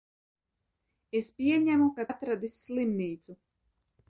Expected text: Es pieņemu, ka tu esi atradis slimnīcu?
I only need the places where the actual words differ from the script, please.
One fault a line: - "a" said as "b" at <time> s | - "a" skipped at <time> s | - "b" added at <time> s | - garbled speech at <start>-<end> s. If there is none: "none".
- "tu esi" skipped at 2.1 s